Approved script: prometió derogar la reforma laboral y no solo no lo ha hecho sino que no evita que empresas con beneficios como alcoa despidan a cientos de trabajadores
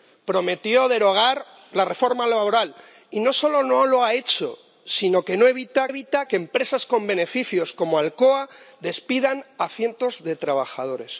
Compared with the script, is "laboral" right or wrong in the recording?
right